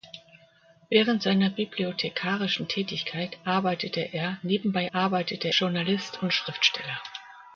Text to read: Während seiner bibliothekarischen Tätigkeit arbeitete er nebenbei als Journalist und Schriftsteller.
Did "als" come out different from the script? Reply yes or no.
yes